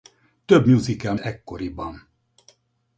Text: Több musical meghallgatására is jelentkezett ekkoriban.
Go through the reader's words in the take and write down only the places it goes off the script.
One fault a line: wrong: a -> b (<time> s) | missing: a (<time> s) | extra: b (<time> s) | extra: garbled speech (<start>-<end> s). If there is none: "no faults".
missing: meghallgatására is jelentkezett (1.1 s)